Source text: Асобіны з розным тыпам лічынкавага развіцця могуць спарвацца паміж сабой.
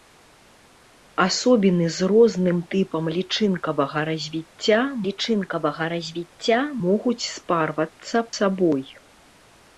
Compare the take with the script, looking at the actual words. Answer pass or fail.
fail